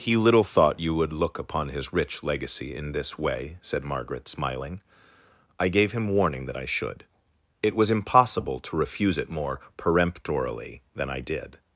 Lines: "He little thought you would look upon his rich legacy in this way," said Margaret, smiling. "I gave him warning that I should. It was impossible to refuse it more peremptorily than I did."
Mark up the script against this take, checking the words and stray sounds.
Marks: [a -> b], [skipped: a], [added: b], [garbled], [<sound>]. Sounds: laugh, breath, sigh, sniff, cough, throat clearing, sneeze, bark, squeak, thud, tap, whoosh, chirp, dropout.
"He little thought you would look upon his rich legacy in this way," said Margaret, smiling. "I gave him warning that I should. It was impossible to refuse it more peremptorily than I did."